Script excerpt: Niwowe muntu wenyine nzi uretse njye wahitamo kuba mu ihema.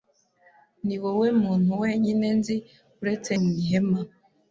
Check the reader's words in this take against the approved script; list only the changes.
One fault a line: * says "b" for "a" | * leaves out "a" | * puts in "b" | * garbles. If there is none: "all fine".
* leaves out "njye wahitamo kuba"